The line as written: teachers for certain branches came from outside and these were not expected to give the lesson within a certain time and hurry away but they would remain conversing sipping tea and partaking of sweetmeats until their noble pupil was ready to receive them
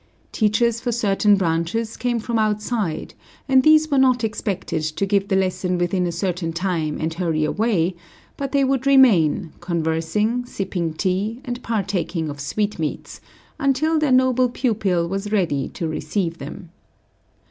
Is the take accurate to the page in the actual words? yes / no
yes